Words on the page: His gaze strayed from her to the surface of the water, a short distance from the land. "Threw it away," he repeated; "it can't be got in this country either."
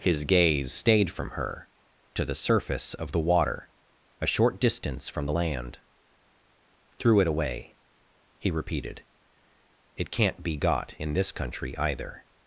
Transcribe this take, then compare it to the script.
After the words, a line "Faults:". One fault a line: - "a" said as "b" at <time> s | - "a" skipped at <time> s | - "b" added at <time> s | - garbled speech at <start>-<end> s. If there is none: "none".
His gaze stayed from her to the surface of the water, a short distance from the land. "Threw it away," he repeated; "it can't be got in this country either."
Faults:
- "strayed" said as "stayed" at 0.7 s